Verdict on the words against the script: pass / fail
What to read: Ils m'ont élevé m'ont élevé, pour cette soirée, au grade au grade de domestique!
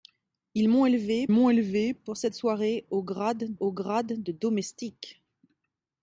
pass